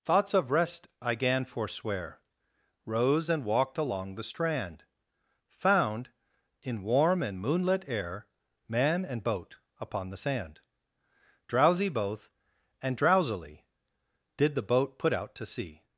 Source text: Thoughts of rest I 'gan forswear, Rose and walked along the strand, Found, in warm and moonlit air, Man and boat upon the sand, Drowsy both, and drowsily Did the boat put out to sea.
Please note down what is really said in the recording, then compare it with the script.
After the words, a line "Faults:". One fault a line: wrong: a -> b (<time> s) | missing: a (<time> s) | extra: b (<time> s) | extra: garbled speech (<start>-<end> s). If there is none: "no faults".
Thoughts of rest I 'gan forswear, Rose and walked along the strand, Found, in warm and moonlit air, Man and boat upon the sand, Drowsy both, and drowsily Did the boat put out to sea.
Faults:
no faults